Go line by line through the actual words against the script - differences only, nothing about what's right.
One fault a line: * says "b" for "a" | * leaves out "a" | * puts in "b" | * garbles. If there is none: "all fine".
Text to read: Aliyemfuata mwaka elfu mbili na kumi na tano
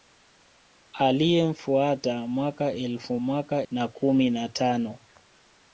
* says "mwaka" for "mbili"